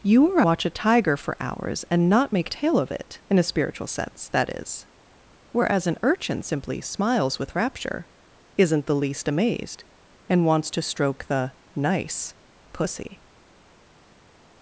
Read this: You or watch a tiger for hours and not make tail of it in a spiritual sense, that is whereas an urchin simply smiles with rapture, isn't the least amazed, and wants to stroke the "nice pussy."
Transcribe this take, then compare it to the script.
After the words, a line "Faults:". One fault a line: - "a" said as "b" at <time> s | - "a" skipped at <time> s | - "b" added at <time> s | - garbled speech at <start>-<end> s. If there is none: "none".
You or watch a tiger for hours and not make tail of it in a spiritual sense, that is whereas an urchin simply smiles with rapture, isn't the least amazed, and wants to stroke the "nice pussy."
Faults:
none